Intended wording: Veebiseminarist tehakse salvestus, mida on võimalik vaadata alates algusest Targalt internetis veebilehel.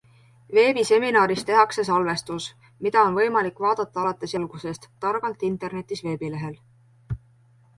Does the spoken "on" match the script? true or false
true